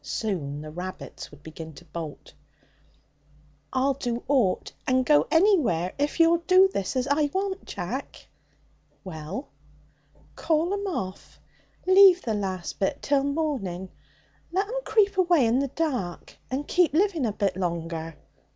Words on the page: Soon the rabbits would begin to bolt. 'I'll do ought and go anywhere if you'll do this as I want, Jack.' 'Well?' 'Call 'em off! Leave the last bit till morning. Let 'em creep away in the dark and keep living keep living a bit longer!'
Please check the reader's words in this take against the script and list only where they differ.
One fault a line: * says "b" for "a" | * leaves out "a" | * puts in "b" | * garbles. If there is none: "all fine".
* leaves out "keep living"